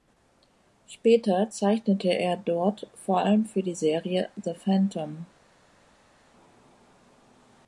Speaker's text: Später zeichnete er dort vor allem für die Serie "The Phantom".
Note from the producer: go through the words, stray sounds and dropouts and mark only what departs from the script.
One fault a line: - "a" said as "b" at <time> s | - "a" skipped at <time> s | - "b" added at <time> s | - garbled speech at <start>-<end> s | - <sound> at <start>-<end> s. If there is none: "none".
none